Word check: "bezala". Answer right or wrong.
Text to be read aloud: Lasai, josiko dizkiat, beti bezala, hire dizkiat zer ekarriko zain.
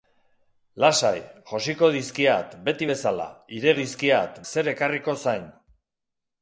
right